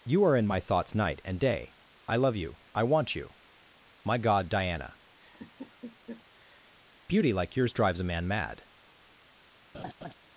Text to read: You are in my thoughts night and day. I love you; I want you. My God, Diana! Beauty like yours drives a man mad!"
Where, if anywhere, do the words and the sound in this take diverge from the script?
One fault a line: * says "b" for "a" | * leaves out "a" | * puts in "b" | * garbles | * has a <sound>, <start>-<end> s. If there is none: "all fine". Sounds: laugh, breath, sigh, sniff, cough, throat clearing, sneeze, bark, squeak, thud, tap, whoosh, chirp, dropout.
* has a laugh, 5.2-6.7 s
* has a laugh, 9.7-10.1 s